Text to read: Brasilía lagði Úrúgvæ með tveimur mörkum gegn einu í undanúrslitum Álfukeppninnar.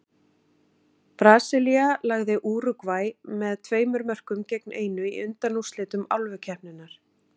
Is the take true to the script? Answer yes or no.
yes